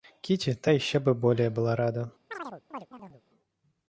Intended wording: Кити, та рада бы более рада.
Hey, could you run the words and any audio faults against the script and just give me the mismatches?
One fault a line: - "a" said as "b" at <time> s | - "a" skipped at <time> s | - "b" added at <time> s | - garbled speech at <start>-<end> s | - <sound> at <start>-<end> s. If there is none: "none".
- "рада" said as "еще" at 0.7 s
- "была" added at 1.5 s
- chirp at 2.3-3.2 s